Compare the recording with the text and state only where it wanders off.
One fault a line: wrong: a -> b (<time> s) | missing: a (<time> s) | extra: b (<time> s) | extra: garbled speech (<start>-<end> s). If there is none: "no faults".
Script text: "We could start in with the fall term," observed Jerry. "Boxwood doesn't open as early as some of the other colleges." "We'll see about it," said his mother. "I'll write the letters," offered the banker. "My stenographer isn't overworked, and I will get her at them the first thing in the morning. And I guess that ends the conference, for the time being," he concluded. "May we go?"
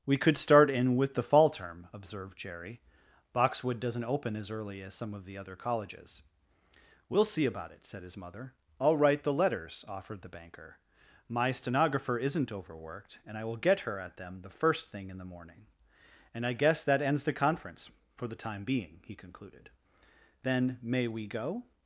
extra: Then (20.4 s)